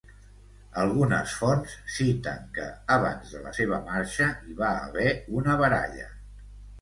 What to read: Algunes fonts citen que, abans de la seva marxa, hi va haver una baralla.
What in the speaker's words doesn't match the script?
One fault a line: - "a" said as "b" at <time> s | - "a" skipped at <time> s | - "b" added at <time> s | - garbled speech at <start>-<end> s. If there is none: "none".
none